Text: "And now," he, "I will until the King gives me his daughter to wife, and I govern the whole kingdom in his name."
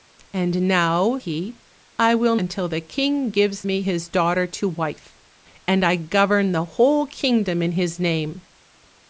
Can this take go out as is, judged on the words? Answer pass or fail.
pass